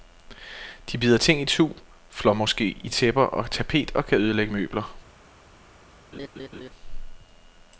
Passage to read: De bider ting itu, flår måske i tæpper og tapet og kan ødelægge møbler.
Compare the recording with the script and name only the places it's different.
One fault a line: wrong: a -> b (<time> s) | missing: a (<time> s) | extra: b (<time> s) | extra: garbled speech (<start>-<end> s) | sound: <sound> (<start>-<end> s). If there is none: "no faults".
sound: laugh (6.1-6.7 s)